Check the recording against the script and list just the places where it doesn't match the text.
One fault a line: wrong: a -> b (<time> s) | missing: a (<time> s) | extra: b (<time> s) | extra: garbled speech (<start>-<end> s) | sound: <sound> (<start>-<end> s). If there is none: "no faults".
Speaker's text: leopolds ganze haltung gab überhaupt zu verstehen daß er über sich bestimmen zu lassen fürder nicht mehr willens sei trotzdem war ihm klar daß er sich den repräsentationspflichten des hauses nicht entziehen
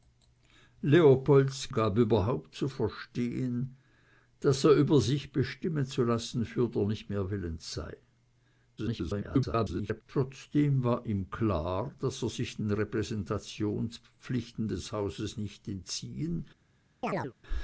missing: ganze haltung (1.7 s)
extra: garbled speech (8.8-10.0 s)
sound: chirp (17.0-17.3 s)